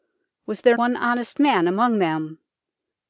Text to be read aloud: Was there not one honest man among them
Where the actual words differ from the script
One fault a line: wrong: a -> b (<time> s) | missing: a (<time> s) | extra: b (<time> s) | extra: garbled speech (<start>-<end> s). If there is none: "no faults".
missing: not (0.8 s)